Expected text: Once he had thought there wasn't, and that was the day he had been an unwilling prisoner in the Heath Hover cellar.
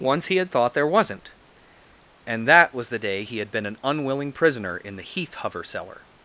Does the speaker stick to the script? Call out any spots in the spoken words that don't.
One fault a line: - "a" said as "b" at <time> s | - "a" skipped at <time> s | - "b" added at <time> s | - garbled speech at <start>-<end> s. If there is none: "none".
none